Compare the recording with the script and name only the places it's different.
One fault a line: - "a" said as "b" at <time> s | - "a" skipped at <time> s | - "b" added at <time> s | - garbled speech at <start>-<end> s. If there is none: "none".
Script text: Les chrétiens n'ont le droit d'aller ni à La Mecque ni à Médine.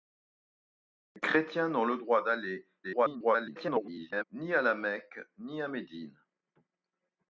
- garbled speech at 2.8-4.2 s